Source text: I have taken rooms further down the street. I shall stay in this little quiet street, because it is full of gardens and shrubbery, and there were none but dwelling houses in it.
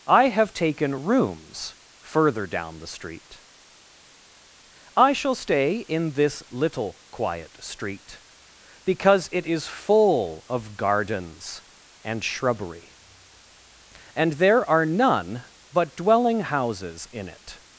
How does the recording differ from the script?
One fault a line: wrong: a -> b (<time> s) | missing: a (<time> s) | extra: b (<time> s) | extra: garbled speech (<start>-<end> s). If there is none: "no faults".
wrong: were -> are (14.7 s)